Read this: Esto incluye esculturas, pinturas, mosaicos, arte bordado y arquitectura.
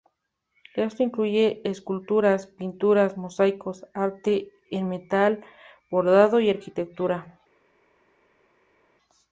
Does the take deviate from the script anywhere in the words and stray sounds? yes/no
yes